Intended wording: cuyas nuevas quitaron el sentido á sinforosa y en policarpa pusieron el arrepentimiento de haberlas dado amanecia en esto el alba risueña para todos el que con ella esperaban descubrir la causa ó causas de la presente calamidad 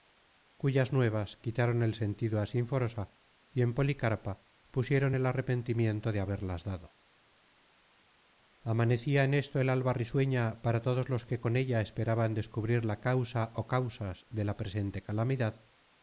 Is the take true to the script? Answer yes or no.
no